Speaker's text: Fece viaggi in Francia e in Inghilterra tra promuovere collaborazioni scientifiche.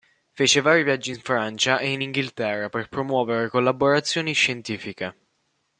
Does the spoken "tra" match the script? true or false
false